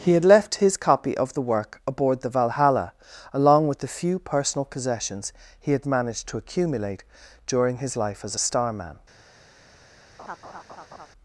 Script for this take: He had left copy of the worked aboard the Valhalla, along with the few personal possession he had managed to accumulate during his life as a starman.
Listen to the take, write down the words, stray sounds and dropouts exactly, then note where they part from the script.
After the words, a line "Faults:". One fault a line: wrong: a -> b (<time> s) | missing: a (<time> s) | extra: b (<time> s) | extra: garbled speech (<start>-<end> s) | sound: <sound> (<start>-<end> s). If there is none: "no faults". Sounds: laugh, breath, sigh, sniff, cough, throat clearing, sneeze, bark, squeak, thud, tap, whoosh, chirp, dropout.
He had left his copy of the work aboard the Valhalla, along with the few personal possessions he had managed to accumulate during his life as a starman.
Faults:
extra: his (0.6 s)
wrong: worked -> work (1.4 s)
wrong: possession -> possessions (4.7 s)
sound: laugh (10.2-11.1 s)